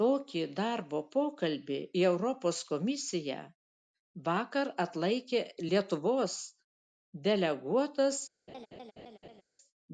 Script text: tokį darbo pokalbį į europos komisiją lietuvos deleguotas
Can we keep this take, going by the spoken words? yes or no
no